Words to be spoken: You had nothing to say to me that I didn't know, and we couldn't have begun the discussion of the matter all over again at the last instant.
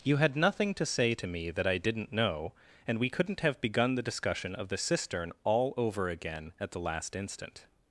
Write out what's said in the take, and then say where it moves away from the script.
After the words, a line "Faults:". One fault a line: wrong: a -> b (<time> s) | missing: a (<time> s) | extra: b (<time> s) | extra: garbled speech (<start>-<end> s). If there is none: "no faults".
You had nothing to say to me that I didn't know, and we couldn't have begun the discussion of the cistern all over again at the last instant.
Faults:
wrong: matter -> cistern (4.8 s)